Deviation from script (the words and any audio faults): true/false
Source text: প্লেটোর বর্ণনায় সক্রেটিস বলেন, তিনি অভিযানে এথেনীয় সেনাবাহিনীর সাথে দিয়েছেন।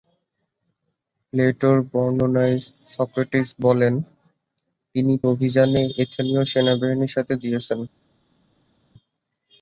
false